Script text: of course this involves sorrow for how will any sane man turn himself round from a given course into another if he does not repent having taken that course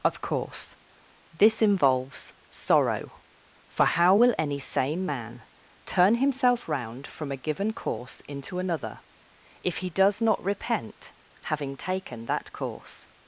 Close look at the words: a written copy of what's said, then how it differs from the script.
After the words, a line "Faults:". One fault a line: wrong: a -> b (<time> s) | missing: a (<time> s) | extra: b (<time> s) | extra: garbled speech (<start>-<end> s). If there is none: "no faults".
of course this involves sorrow for how will any sane man turn himself round from a given course into another if he does not repent having taken that course
Faults:
no faults